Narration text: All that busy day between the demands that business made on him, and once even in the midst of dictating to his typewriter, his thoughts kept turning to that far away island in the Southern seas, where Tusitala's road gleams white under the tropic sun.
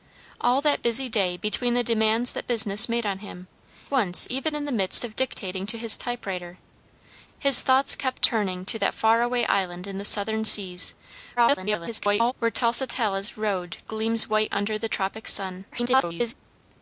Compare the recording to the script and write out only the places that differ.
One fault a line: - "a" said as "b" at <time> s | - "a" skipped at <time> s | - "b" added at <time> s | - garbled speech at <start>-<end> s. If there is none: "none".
- "and" skipped at 3.5 s
- garbled speech at 11.4-12.3 s
- garbled speech at 15.7-16.3 s